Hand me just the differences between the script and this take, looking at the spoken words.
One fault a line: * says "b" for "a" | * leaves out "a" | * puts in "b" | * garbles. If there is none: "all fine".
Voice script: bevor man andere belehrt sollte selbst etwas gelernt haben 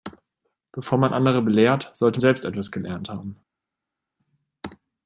all fine